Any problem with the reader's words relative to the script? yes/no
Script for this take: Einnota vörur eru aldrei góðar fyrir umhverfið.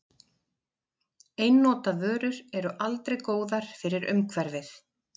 no